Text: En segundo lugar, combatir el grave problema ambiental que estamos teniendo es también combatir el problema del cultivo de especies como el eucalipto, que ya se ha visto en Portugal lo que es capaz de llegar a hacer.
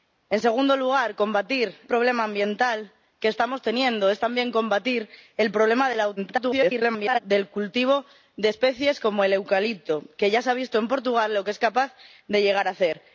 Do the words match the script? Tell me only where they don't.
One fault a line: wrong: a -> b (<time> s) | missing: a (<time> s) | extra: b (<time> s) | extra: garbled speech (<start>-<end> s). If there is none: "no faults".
missing: el grave (1.8 s)
extra: garbled speech (6.2-7.2 s)